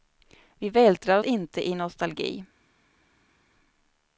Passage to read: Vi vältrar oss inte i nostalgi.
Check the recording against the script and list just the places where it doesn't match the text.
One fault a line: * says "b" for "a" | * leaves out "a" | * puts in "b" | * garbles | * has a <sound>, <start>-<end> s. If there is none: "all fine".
* leaves out "oss"